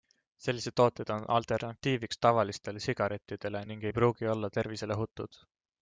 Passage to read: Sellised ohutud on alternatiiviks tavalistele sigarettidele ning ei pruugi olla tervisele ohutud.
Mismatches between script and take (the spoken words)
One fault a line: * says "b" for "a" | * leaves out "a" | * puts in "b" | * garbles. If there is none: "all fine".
* says "tooted" for "ohutud"